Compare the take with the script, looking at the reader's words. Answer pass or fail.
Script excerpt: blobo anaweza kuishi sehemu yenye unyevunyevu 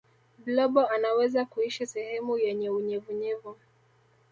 pass